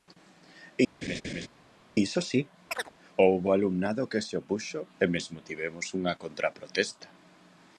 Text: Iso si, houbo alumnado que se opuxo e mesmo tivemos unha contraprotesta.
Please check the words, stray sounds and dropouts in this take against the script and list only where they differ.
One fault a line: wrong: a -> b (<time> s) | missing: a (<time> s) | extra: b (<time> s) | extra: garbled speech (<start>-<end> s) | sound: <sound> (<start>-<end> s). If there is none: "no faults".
sound: laugh (1.0-1.5 s)
sound: chirp (2.7-2.9 s)